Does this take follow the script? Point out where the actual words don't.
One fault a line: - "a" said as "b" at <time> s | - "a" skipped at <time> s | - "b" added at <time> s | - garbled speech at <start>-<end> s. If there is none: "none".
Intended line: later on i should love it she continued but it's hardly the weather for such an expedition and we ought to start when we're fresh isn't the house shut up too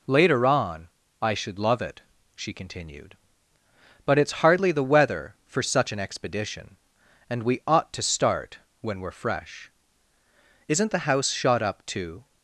- "shut" said as "shot" at 11.3 s